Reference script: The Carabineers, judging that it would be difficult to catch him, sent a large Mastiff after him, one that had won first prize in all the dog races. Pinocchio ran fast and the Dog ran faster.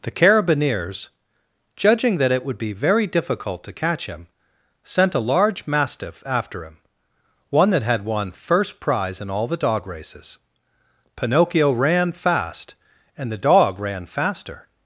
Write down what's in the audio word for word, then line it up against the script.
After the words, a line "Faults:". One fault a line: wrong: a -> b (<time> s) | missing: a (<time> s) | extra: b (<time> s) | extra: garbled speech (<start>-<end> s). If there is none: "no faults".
The Carabineers, judging that it would be very difficult to catch him, sent a large Mastiff after him, one that had won first prize in all the dog races. Pinocchio ran fast and the Dog ran faster.
Faults:
extra: very (2.7 s)